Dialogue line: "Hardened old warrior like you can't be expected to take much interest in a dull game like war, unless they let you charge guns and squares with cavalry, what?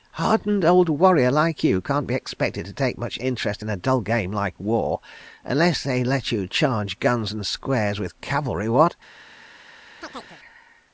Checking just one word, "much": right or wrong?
right